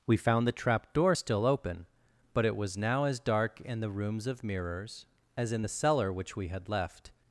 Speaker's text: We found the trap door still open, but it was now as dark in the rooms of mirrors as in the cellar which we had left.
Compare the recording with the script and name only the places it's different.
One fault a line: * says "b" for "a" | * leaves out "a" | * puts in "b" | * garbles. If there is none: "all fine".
all fine